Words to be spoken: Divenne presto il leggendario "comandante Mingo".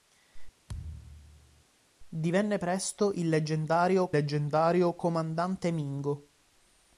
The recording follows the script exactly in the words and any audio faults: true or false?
false